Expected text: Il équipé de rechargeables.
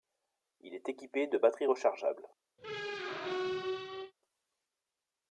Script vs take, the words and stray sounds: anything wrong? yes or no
yes